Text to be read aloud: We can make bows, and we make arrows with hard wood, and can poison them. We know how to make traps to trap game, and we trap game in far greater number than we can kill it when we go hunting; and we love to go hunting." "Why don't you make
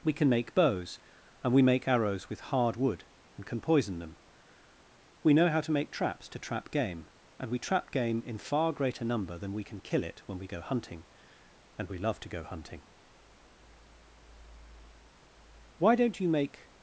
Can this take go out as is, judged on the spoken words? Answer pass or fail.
pass